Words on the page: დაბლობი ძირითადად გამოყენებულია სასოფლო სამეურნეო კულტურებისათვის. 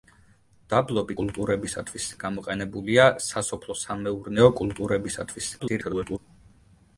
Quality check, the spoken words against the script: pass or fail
fail